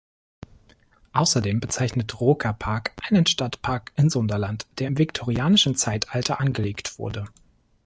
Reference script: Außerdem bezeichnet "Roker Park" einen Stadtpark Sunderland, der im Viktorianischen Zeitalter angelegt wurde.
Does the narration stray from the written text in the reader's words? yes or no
yes